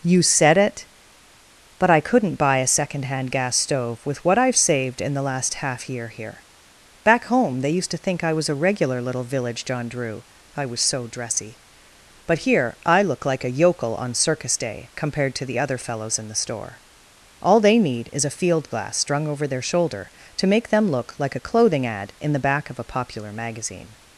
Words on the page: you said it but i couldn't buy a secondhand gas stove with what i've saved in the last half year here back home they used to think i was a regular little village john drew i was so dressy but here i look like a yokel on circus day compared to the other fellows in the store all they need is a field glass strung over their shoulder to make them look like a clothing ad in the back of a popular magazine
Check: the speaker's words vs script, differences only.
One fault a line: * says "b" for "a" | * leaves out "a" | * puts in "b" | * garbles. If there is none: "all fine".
all fine